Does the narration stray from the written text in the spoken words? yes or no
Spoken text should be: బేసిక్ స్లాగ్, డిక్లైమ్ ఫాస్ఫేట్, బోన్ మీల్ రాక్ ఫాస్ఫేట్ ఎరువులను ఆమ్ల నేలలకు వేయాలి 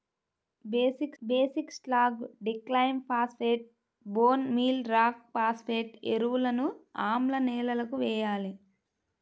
yes